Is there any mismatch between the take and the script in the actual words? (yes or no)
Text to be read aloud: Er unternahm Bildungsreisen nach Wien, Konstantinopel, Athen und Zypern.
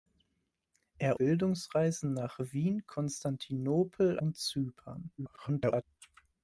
yes